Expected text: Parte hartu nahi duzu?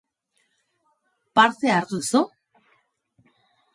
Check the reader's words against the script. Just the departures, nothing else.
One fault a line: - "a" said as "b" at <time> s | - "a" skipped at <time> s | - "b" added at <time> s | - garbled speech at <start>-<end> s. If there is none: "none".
- "nahi" skipped at 2.0 s